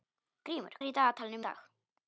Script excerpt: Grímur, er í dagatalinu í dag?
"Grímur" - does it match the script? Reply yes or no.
yes